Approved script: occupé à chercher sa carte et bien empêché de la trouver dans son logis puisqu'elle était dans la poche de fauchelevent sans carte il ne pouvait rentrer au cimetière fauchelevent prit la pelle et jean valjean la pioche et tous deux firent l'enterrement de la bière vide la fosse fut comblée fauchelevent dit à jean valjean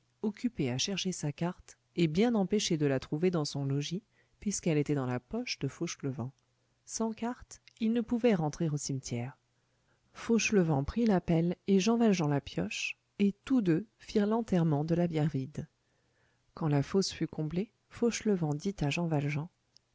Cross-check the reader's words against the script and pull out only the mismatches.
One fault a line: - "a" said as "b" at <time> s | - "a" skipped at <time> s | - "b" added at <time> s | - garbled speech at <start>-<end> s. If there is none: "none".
- "quand" added at 16.5 s